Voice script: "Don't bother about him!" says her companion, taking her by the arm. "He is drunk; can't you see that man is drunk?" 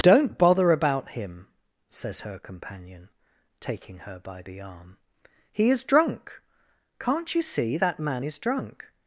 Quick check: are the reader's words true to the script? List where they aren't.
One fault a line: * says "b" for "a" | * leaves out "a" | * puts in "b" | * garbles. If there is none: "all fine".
all fine